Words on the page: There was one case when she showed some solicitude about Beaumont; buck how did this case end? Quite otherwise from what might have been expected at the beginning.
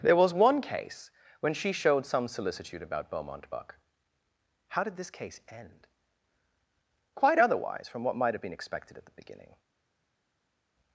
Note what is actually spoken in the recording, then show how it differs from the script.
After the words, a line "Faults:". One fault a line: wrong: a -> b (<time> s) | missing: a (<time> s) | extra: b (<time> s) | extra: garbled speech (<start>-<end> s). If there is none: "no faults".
There was one case when she showed some solicitude about Beaumont; buck how did this case end? Quite otherwise from what might have been expected at the beginning.
Faults:
no faults